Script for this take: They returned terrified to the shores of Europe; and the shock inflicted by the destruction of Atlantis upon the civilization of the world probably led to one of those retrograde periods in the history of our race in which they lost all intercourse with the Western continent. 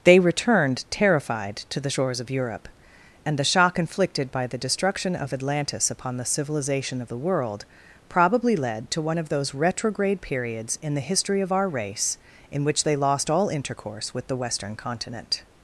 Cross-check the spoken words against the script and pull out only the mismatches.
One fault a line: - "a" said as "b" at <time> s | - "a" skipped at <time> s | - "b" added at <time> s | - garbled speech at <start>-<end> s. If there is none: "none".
none